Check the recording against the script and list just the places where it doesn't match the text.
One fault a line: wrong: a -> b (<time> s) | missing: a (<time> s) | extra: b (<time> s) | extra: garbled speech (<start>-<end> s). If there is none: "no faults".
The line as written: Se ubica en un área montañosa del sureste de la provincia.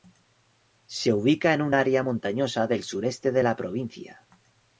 no faults